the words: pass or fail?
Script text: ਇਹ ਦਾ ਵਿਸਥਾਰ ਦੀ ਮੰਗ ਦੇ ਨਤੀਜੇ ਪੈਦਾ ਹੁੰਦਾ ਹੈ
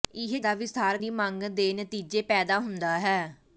pass